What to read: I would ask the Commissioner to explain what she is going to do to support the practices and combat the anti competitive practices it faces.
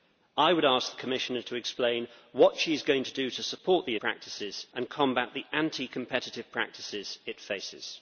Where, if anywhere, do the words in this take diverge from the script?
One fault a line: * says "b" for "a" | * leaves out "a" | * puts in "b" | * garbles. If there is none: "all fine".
all fine